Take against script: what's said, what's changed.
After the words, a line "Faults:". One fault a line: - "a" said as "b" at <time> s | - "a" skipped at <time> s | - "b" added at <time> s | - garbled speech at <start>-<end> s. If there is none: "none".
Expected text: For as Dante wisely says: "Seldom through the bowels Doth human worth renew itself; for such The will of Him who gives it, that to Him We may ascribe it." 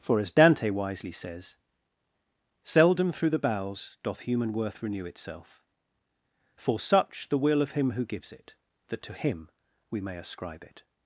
For as Dante wisely says: "Seldom through the bowels Doth human worth renew itself; for such The will of Him who gives it, that to Him We may ascribe it."
Faults:
none